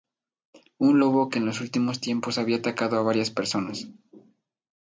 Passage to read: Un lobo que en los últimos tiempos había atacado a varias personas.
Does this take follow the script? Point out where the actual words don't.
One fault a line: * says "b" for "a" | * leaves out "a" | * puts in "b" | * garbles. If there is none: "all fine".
all fine